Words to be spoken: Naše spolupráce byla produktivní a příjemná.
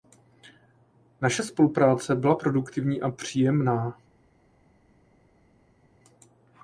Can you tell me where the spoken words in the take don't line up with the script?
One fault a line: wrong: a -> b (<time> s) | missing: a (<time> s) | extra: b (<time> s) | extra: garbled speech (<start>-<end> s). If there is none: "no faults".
no faults